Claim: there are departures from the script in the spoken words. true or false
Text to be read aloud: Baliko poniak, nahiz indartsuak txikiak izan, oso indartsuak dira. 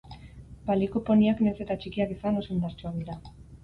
true